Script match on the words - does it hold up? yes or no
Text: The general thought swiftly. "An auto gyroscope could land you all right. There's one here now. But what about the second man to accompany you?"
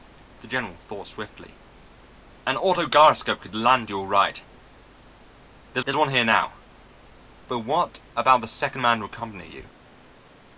no